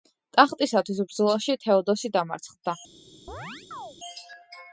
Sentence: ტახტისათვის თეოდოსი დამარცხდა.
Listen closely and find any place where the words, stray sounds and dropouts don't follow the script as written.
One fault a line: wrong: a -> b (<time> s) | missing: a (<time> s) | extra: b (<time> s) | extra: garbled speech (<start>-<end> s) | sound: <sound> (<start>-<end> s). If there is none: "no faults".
extra: ბრძოლაში (1.1 s)
sound: chirp (3.3-4.0 s)